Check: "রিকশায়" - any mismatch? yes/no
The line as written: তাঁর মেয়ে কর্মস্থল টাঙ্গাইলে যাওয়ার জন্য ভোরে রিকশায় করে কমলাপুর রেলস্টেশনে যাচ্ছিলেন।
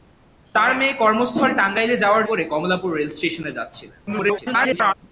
yes